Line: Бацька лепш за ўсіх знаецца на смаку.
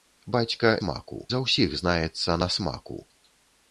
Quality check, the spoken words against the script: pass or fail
fail